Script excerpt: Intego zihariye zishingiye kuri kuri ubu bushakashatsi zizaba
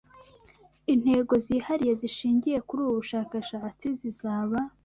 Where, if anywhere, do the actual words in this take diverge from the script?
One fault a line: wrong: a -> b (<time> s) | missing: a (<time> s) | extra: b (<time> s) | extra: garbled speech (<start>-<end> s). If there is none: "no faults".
missing: kuri (2.8 s)